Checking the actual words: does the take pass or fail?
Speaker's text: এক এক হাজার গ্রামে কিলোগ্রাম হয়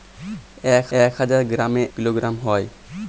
pass